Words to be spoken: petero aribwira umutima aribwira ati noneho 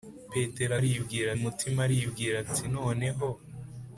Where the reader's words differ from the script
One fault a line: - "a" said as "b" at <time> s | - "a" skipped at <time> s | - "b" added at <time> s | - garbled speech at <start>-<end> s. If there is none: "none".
none